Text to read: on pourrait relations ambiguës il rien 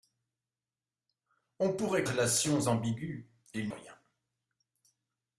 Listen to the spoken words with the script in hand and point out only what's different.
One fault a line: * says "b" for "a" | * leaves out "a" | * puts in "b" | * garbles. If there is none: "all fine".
all fine